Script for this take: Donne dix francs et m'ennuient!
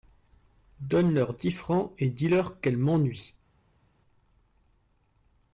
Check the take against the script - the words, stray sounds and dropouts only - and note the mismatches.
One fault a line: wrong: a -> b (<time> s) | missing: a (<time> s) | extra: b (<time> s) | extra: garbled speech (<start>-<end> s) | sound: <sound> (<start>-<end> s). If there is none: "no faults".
extra: leur (1.1 s)
extra: dis leur qu'elles (2.1 s)